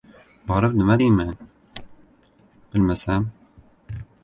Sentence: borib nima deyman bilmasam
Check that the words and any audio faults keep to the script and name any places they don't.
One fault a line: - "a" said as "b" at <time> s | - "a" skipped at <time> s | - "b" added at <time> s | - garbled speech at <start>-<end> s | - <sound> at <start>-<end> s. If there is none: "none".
none